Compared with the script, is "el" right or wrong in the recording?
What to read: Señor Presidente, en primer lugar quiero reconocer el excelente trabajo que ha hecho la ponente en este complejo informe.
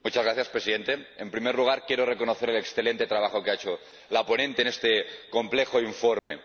right